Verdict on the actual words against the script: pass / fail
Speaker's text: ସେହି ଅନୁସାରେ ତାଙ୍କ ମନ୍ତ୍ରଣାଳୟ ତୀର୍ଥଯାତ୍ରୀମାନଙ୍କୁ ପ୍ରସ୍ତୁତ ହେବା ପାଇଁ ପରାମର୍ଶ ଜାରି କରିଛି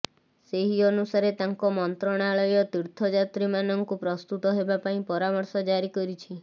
pass